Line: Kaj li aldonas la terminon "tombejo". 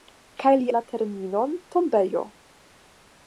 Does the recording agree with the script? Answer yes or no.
no